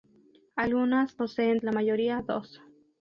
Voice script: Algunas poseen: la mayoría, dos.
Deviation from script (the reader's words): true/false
false